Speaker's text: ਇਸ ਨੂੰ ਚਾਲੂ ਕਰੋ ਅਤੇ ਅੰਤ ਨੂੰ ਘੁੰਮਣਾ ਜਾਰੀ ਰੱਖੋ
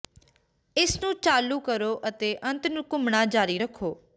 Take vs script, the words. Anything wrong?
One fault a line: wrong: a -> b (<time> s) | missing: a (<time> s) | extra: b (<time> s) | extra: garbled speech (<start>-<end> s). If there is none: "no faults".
no faults